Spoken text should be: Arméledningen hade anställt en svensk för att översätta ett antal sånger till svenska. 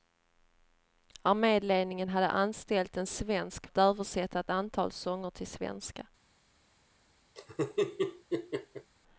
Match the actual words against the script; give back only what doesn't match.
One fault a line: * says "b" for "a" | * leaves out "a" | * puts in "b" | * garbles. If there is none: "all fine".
* leaves out "för"